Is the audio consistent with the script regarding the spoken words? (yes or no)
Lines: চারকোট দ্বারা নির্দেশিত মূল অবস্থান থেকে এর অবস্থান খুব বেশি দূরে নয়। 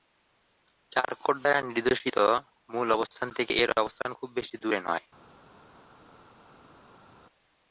yes